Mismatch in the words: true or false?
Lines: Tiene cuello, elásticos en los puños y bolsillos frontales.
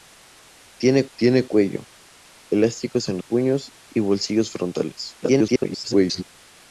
true